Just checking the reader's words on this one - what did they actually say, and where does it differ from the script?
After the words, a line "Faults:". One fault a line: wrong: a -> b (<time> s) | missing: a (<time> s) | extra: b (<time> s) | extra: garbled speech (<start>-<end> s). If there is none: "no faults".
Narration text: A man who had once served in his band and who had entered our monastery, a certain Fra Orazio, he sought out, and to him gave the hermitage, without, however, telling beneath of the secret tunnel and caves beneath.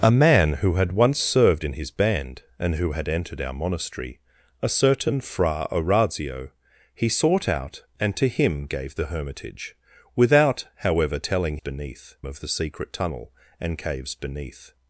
A man who had once served in his band and who had entered our monastery, a certain Fra Orazio, he sought out, and to him gave the hermitage, without, however, telling beneath of the secret tunnel and caves beneath.
Faults:
no faults